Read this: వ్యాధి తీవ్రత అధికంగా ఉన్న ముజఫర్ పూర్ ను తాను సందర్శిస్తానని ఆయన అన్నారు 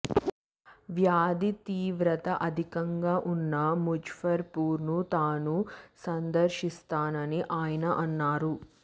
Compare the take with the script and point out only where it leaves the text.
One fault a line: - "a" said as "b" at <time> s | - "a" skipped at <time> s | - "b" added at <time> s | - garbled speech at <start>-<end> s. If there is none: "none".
none